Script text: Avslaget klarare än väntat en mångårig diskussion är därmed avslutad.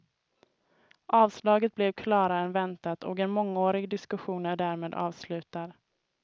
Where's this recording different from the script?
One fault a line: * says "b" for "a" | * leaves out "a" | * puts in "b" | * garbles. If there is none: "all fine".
* puts in "blev"
* puts in "och"